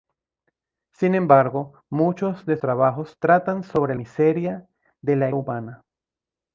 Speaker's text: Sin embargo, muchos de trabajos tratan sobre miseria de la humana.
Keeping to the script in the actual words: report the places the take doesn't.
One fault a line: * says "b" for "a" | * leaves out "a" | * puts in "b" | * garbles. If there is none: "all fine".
all fine